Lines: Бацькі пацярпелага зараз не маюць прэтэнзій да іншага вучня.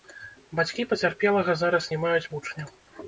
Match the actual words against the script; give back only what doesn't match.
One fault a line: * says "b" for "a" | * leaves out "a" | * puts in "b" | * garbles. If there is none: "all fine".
* leaves out "прэтэнзій да іншага"